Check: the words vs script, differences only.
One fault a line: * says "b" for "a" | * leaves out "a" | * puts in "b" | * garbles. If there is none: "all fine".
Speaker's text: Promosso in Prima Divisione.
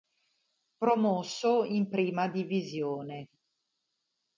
all fine